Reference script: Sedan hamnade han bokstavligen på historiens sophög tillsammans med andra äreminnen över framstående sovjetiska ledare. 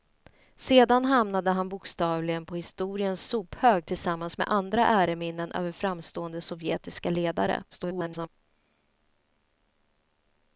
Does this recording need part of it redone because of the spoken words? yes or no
yes